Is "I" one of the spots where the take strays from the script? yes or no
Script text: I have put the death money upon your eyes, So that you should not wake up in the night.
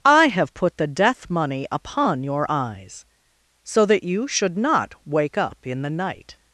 no